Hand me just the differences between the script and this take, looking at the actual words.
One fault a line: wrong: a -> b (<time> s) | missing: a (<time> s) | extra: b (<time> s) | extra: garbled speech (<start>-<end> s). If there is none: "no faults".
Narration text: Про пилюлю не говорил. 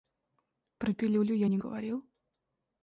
extra: я (1.4 s)